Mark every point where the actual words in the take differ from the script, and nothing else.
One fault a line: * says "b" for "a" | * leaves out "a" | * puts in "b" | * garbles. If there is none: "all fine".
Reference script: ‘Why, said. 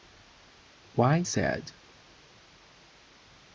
all fine